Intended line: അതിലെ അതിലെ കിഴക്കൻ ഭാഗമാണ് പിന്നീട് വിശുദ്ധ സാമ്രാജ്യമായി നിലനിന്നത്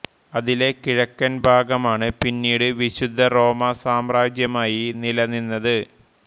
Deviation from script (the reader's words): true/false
true